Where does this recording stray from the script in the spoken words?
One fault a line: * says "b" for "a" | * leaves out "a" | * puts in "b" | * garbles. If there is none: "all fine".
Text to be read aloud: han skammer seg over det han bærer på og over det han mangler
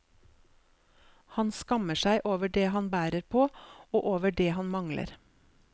all fine